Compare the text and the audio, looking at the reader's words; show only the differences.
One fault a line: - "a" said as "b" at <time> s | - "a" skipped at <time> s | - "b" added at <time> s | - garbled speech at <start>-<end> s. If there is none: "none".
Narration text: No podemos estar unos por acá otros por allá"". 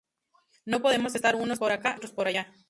none